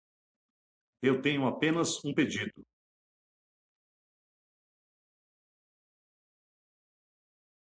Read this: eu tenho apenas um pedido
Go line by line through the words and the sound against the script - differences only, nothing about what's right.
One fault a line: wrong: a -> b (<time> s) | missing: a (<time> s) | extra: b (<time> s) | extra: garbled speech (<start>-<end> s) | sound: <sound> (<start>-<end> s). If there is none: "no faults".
no faults